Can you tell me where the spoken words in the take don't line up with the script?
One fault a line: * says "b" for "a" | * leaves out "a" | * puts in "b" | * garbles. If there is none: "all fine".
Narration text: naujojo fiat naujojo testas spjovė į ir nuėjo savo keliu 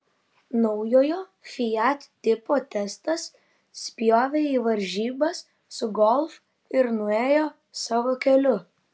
* says "tipo" for "naujojo"
* puts in "varžybas su golf"